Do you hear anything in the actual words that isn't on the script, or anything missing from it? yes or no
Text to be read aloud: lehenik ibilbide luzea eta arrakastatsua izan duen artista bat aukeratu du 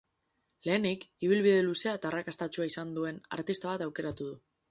no